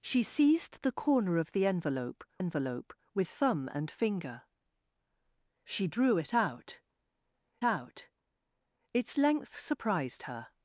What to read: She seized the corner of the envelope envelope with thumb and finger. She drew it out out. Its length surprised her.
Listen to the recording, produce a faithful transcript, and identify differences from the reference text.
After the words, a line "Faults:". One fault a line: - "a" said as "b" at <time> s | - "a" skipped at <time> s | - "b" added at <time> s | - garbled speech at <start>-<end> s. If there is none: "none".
She seized the corner of the envelope envelope with thumb and finger. She drew it out out. Its length surprised her.
Faults:
none